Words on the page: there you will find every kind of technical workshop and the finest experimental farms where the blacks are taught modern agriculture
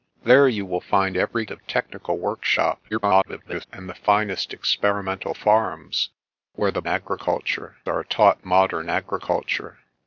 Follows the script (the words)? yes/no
no